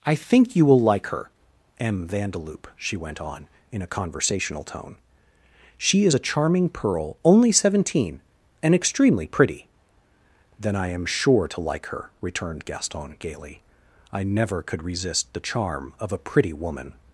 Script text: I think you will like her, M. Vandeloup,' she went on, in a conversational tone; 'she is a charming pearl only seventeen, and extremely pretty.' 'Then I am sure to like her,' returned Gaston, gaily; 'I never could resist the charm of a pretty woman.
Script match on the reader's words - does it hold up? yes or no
yes